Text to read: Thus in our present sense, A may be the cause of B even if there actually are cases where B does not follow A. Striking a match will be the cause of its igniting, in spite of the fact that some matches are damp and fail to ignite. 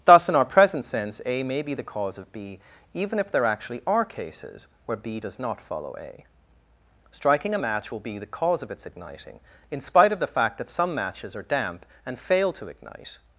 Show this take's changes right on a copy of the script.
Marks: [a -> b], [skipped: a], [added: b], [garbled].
Thus in our present sense, A may be the cause of B even if there actually are cases where B does not follow A. Striking a match will be the cause of its igniting, in spite of the fact that some matches are damp and fail to ignite.